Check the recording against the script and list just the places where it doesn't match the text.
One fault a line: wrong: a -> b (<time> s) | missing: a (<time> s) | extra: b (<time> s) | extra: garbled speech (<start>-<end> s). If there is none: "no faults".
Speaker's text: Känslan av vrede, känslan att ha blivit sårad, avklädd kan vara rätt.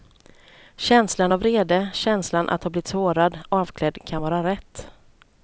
no faults